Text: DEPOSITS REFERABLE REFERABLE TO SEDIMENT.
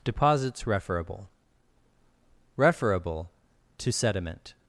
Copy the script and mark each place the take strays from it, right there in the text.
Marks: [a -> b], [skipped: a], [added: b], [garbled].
DEPOSITS REFERABLE REFERABLE TO SEDIMENT.